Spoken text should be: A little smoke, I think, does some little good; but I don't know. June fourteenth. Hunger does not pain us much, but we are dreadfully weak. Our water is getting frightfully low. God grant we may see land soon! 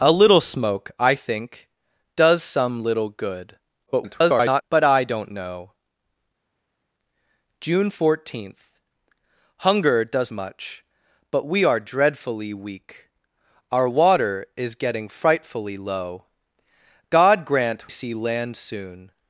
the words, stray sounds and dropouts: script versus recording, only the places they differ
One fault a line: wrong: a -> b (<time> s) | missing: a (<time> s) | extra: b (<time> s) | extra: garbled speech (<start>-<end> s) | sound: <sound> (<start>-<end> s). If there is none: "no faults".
extra: garbled speech (3.9-4.6 s)
missing: not pain us (10.3 s)
missing: we may (17.9 s)